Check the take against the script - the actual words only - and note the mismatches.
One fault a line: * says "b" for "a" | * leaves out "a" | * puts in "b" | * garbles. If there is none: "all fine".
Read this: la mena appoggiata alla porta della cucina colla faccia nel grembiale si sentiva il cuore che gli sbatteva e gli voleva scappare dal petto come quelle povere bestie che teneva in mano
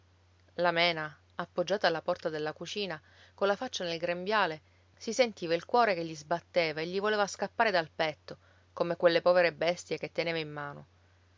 all fine